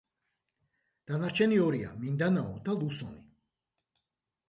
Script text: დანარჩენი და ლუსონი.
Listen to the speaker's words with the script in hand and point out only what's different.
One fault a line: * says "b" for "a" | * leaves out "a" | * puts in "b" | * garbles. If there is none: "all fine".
* puts in "ორია მინდანაო"